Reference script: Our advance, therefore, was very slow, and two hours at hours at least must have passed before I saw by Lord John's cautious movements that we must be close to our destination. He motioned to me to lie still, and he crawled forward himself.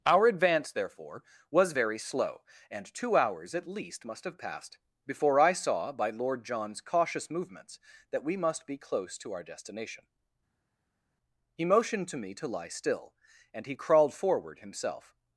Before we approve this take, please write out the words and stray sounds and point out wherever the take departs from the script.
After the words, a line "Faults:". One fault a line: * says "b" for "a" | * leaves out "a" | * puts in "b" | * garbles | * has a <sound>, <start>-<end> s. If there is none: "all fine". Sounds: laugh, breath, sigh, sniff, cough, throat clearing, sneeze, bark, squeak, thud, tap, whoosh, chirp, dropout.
Our advance, therefore, was very slow, and two hours at least must have passed before I saw by Lord John's cautious movements that we must be close to our destination. He motioned to me to lie still, and he crawled forward himself.
Faults:
* leaves out "hours at"